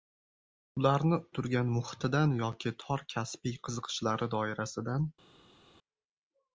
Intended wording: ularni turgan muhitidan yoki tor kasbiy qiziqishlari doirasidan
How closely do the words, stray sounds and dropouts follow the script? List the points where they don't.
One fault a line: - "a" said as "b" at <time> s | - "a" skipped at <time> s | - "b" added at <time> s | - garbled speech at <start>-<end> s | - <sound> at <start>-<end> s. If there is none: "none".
none